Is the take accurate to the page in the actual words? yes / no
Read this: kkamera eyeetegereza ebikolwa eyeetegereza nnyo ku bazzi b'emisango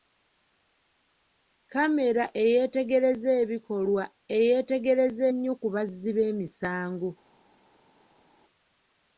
yes